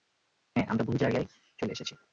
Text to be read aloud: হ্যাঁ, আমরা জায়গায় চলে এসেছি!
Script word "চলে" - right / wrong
right